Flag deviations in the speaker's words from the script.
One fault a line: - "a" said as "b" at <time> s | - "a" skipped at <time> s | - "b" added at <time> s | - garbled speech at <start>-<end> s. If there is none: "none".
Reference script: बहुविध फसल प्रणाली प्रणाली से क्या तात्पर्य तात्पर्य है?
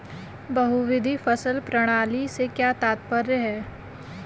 - "प्रणाली" skipped at 2.3 s
- "तात्पर्य" skipped at 3.4 s